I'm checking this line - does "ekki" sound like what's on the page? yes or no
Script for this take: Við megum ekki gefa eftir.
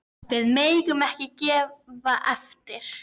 yes